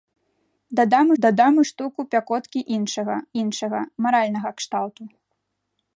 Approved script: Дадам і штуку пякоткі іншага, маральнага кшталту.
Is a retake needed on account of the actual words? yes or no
yes